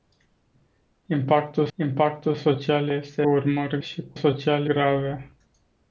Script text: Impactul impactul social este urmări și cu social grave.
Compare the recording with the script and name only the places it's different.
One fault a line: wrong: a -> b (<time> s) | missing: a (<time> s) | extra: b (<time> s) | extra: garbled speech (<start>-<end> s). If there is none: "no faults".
no faults